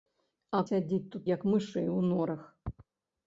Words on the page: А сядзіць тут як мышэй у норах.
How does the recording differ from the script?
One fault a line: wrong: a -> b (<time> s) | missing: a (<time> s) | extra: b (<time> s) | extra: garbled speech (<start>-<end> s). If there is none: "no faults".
no faults